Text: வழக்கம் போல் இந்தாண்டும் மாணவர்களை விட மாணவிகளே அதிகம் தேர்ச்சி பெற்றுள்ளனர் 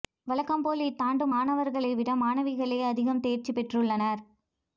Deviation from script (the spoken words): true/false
false